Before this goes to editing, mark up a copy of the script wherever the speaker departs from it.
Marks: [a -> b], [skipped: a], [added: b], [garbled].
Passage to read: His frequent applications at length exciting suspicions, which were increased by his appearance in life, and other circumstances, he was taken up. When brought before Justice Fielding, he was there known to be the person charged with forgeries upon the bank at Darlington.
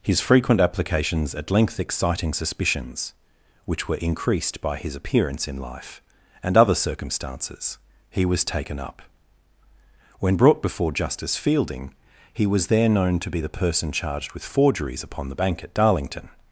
His frequent applications at length exciting suspicions, which were increased by his appearance in life, and other circumstances, he was taken up. When brought before Justice Fielding, he was there known to be the person charged with forgeries upon the bank at Darlington.